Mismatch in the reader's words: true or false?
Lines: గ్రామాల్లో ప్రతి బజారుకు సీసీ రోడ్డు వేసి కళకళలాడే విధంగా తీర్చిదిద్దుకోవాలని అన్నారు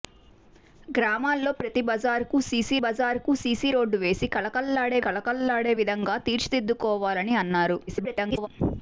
true